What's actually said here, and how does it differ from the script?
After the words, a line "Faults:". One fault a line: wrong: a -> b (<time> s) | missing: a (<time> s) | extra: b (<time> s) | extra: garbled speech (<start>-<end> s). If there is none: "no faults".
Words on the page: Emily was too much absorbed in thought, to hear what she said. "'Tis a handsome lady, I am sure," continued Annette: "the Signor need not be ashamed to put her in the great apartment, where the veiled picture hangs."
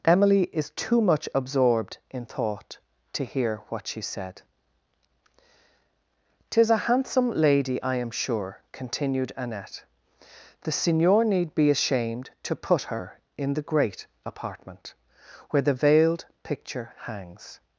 Emily is too much absorbed in thought, to hear what she said. "'Tis a handsome lady, I am sure," continued Annette: "the Signor need be ashamed to put her in the great apartment, where the veiled picture hangs."
Faults:
wrong: was -> is (0.5 s)
missing: not (11.5 s)